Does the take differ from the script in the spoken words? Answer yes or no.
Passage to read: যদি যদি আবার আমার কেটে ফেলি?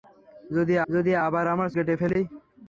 no